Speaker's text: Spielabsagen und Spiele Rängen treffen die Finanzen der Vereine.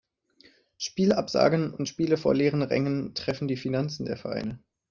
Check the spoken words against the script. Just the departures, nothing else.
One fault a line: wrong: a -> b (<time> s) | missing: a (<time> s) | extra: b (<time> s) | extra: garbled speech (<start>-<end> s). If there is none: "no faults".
extra: vor leeren (2.2 s)